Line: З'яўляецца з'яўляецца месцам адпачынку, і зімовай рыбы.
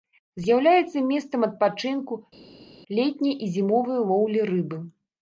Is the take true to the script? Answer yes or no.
no